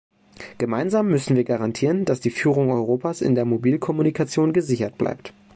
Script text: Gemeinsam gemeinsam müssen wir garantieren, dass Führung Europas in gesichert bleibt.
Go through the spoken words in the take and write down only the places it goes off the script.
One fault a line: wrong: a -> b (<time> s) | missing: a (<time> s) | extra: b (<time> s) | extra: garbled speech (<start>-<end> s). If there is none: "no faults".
missing: gemeinsam (1.1 s)
extra: die (2.2 s)
extra: der Mobilkommunikation (3.3 s)